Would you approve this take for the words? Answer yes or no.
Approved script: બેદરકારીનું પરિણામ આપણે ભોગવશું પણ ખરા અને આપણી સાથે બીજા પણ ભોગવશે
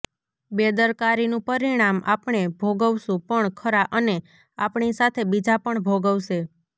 yes